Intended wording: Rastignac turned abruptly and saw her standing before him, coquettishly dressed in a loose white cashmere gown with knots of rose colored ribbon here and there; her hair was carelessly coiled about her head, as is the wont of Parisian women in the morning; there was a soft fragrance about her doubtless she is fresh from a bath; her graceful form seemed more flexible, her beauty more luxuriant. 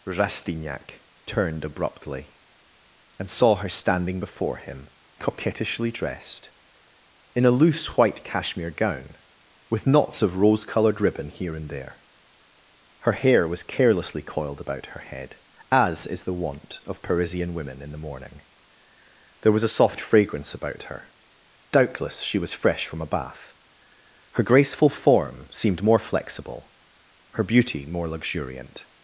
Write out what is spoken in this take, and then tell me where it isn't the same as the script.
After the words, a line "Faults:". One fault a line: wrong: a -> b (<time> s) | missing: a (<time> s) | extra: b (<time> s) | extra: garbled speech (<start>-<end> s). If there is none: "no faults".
Rastignac turned abruptly and saw her standing before him, coquettishly dressed in a loose white cashmere gown with knots of rose colored ribbon here and there; her hair was carelessly coiled about her head, as is the wont of Parisian women in the morning; there was a soft fragrance about her doubtless she was fresh from a bath; her graceful form seemed more flexible, her beauty more luxuriant.
Faults:
wrong: is -> was (22.4 s)